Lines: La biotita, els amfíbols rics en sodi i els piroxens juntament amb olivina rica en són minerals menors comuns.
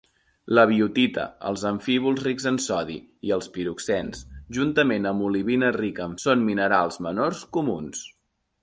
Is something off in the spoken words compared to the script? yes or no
no